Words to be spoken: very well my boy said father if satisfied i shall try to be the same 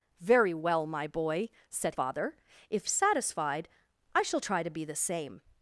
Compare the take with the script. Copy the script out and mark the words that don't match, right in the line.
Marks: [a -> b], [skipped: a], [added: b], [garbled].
very well my boy said father if satisfied i shall try to be the same